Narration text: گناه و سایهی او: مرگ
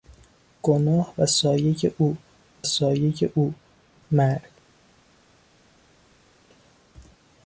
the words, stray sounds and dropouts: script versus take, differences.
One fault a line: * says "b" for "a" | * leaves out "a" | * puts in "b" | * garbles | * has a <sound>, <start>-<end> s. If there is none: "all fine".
* puts in "سایهی او"